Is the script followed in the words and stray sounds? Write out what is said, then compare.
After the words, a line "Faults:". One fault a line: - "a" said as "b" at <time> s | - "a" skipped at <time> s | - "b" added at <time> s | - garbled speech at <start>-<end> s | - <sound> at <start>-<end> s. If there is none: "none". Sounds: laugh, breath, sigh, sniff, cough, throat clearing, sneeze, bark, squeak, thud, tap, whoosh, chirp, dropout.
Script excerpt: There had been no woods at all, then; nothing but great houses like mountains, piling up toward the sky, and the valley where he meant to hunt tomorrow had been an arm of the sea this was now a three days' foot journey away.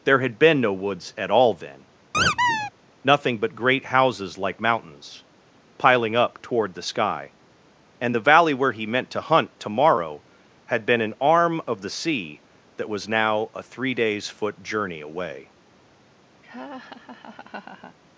There had been no woods at all, then; nothing but great houses like mountains, piling up toward the sky, and the valley where he meant to hunt tomorrow had been an arm of the sea that was now a three days' foot journey away.
Faults:
- squeak at 2.1-2.7 s
- "this" said as "that" at 12.8 s
- laugh at 16.4-18.0 s